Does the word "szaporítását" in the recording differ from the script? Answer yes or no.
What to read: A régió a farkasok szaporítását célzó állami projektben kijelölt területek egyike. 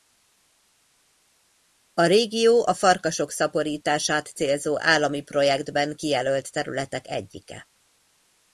no